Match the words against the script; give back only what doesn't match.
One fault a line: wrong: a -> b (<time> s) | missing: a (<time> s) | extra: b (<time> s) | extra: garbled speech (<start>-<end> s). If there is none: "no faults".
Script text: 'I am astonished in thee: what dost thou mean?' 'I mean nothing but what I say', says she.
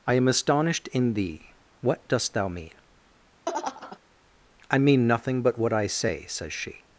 no faults